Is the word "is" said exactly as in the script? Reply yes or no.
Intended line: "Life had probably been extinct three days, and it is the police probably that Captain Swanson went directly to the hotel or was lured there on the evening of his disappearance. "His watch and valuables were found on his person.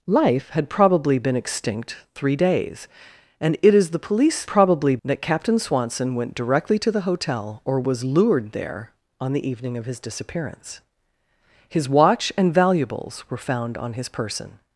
yes